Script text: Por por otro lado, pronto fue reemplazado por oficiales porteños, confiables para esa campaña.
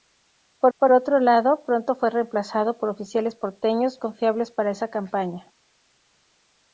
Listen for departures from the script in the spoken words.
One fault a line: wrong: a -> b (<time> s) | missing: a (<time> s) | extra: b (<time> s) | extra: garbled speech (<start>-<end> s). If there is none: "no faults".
no faults